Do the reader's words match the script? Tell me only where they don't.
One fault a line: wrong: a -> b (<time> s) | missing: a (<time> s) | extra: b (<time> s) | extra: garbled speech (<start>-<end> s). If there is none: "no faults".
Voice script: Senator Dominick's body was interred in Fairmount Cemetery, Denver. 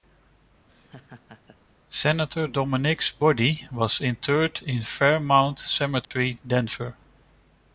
no faults